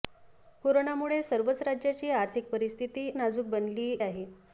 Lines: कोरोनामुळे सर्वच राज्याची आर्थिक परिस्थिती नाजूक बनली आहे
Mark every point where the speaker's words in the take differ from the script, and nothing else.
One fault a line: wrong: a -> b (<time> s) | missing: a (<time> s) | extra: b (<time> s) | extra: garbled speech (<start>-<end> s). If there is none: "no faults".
no faults